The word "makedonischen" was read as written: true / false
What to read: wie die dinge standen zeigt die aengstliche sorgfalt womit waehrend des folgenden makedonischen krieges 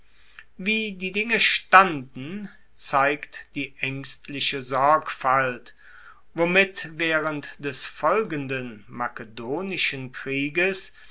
true